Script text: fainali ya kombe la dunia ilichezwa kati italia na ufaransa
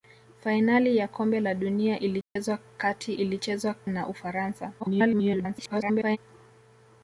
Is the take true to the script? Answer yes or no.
no